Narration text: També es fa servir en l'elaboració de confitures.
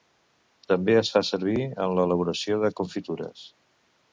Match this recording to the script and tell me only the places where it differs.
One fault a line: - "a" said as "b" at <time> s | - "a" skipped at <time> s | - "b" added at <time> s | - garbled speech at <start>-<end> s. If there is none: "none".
none